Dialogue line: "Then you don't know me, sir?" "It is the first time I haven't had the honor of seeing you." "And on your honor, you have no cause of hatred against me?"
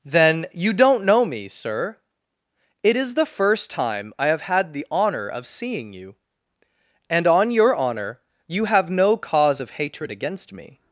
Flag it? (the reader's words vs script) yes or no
yes